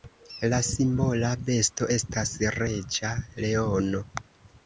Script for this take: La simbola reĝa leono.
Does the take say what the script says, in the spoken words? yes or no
no